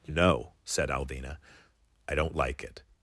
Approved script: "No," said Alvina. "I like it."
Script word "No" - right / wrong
right